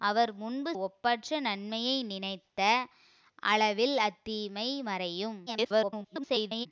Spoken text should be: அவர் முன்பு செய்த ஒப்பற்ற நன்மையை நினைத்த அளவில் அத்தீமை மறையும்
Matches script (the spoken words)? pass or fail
fail